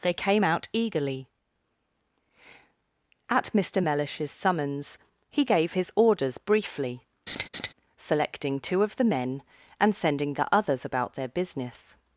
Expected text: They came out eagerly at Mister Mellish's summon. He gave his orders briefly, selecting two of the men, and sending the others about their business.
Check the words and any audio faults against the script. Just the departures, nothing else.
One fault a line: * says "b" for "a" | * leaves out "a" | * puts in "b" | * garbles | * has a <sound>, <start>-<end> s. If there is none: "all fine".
* says "summons" for "summon"
* has a laugh, 7.3-7.7 s